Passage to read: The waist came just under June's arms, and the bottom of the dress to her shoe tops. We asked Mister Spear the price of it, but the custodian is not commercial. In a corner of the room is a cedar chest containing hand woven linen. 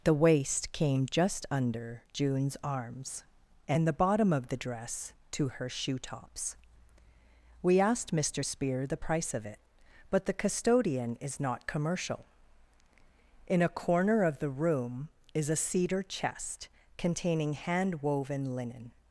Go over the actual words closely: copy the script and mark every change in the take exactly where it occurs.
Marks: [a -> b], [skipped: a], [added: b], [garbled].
The waist came just under June's arms, and the bottom of the dress to her shoe tops. We asked Mister Spear the price of it, but the custodian is not commercial. In a corner of the room is a cedar chest containing hand woven linen.